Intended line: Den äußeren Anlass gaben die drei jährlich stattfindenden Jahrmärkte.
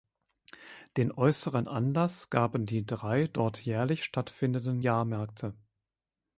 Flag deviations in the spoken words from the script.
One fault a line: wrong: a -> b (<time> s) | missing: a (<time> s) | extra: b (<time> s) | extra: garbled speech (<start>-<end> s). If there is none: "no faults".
extra: dort (3.3 s)